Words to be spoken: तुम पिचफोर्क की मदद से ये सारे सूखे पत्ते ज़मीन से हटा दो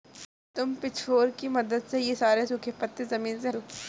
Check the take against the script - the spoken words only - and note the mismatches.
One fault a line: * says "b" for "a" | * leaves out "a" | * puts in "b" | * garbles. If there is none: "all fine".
* leaves out "हटा"